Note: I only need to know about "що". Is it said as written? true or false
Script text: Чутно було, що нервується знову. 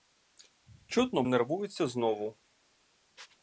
false